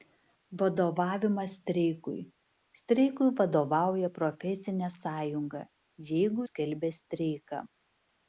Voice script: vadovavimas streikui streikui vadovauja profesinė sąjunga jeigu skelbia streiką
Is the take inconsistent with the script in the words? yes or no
no